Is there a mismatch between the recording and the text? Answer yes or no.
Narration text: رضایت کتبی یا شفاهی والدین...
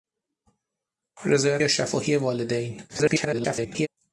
yes